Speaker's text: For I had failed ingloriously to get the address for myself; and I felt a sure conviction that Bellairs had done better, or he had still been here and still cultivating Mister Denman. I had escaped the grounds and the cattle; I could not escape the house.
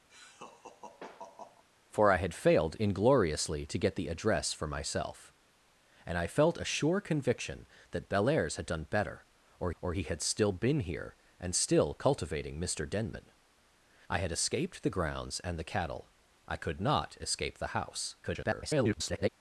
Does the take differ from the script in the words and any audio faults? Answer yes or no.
yes